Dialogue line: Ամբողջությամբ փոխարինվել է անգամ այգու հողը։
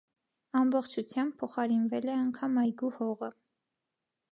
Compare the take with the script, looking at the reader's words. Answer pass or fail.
pass